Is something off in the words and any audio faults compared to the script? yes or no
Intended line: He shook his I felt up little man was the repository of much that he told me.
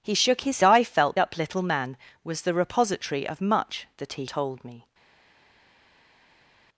no